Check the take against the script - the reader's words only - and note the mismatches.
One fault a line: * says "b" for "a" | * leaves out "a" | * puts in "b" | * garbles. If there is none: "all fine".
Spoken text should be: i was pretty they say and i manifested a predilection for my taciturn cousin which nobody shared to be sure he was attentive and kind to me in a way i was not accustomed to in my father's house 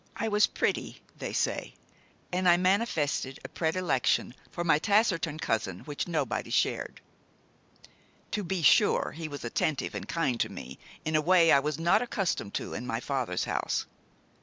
all fine